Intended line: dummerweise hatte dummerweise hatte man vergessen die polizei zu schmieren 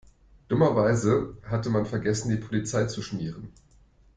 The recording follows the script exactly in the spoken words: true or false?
false